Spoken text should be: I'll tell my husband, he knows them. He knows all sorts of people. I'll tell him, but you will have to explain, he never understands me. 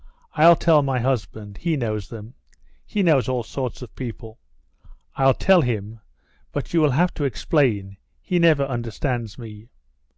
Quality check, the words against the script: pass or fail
pass